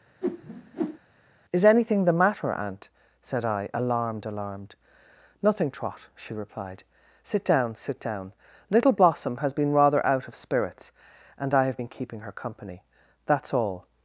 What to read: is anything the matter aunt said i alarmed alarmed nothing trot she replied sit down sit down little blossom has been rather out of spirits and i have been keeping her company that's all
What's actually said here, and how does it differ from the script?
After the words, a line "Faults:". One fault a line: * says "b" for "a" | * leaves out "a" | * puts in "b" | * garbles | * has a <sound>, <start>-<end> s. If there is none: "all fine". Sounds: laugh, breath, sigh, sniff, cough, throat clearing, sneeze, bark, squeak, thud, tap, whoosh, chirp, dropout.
is anything the matter aunt said i alarmed alarmed nothing trot she replied sit down sit down little blossom has been rather out of spirits and i have been keeping her company that's all
Faults:
* has a whoosh, 0.2-1.0 s